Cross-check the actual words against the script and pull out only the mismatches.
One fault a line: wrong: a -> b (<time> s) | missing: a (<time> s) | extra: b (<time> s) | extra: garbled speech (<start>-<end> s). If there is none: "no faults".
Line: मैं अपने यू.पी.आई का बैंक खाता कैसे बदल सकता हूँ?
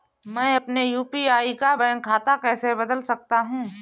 no faults